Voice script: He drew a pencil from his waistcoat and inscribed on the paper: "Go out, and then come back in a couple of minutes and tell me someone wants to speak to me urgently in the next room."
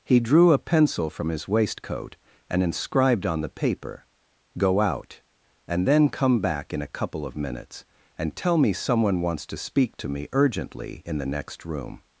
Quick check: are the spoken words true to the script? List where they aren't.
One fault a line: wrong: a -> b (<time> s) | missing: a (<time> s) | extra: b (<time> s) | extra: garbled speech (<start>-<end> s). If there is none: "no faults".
no faults